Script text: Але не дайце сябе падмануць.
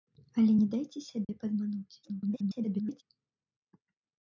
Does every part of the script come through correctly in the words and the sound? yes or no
no